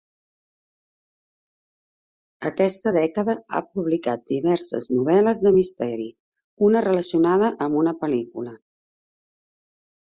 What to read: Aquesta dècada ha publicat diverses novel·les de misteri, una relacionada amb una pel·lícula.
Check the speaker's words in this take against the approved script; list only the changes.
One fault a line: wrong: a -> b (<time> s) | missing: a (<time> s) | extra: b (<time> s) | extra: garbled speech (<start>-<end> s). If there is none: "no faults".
no faults